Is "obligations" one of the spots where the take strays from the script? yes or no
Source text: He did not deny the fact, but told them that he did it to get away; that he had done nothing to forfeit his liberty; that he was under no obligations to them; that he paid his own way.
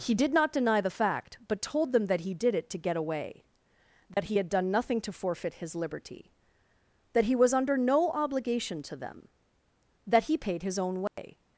yes